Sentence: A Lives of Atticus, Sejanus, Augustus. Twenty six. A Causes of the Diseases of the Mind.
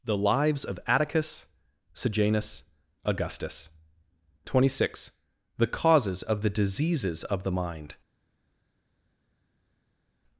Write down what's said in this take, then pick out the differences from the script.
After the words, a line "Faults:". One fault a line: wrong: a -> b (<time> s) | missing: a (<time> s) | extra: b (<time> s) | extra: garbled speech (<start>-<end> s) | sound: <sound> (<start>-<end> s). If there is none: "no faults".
The Lives of Atticus, Sejanus, Augustus. Twenty six. The Causes of the Diseases of the Mind.
Faults:
wrong: A -> The (0.0 s)
wrong: A -> The (5.6 s)